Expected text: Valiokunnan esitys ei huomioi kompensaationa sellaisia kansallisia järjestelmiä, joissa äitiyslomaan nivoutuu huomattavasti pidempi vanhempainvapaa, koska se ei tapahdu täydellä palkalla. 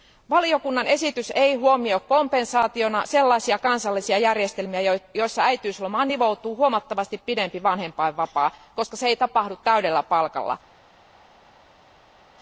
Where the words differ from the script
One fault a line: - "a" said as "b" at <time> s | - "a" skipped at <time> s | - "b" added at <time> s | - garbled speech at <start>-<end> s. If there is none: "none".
none